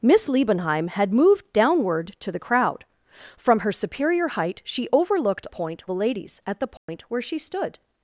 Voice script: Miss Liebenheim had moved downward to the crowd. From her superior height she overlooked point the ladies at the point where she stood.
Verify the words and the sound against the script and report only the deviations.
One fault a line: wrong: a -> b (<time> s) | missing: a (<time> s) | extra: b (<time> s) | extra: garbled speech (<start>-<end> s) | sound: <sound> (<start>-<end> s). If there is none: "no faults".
sound: dropout (6.8-6.9 s)